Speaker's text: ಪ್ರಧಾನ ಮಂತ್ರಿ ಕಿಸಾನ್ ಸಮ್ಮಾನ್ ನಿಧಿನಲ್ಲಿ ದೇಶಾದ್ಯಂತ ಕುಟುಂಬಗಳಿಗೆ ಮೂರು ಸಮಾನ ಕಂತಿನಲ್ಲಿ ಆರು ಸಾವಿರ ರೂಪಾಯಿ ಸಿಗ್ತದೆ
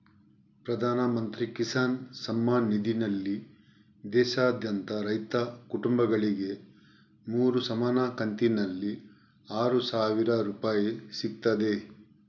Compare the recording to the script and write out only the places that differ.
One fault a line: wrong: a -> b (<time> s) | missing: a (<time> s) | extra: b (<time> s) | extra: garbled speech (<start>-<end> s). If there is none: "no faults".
extra: ರೈತ (5.0 s)